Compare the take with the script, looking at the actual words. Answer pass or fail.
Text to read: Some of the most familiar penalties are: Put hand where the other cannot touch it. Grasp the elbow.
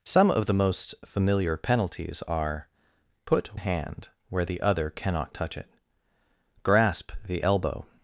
pass